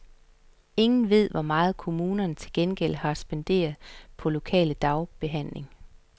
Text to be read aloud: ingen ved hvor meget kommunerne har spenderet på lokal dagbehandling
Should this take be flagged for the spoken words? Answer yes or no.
yes